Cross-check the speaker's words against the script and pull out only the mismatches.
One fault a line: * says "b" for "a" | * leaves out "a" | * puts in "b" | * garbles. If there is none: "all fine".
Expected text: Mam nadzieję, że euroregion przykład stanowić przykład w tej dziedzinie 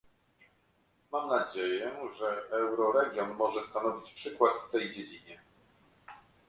* says "może" for "przykład"